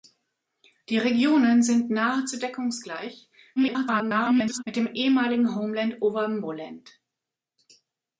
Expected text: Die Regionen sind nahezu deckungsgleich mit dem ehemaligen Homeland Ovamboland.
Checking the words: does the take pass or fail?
fail